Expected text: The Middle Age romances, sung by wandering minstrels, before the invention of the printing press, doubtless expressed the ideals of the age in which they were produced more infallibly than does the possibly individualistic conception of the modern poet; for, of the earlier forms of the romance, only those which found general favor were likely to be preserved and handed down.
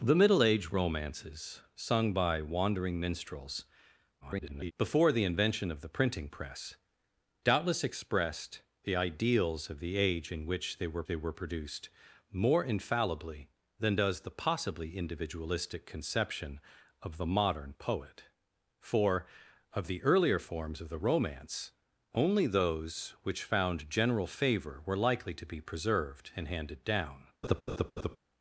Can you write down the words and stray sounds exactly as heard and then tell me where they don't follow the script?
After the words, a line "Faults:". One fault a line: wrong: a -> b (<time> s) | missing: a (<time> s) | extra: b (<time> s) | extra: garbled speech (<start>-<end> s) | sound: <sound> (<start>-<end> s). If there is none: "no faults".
The Middle Age romances, sung by wandering minstrels, [garbled] before the invention of the printing press, doubtless expressed the ideals of the age in which they were they were produced more infallibly than does the possibly individualistic conception of the modern poet; for, of the earlier forms of the romance, only those which found general favor were likely to be preserved and handed down.
Faults:
extra: garbled speech (4.2-4.7 s)
extra: they were (11.1 s)
sound: laugh (27.4-28.2 s)